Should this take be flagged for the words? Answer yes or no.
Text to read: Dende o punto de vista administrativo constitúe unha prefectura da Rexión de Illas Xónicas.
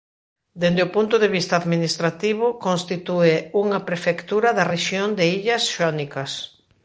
no